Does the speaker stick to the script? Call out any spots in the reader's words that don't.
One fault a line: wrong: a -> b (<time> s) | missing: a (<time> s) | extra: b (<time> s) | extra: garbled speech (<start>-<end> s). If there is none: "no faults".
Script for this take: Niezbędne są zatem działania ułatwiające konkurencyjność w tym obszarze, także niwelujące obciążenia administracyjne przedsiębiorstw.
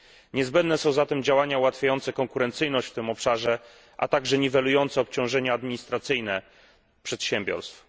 extra: a (4.0 s)